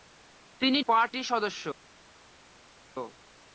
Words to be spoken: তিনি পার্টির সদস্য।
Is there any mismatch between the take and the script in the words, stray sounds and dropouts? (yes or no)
no